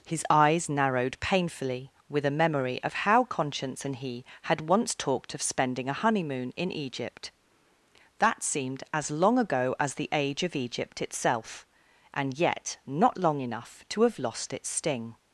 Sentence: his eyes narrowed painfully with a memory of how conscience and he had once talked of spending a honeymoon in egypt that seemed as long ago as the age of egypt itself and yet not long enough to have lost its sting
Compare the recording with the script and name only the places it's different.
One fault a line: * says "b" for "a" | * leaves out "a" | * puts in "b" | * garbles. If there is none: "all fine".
all fine